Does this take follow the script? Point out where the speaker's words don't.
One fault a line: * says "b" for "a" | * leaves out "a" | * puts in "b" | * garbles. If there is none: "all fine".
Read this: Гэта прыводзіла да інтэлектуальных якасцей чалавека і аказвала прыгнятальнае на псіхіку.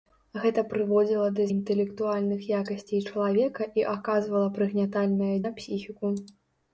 all fine